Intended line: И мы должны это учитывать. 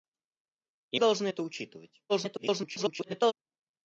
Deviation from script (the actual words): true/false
true